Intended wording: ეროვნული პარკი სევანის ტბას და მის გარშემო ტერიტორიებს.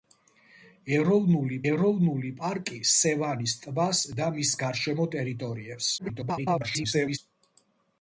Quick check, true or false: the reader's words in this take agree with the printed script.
false